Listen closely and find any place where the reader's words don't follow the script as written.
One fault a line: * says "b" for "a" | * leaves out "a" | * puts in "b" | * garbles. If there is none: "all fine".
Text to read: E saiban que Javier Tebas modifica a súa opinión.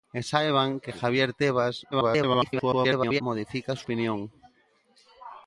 * garbles
* leaves out "súa"